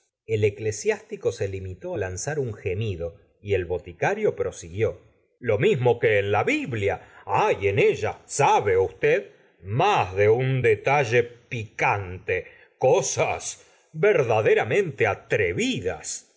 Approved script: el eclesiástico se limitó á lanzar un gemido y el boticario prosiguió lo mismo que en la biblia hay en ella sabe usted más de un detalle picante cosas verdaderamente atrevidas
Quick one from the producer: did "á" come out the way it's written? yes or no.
yes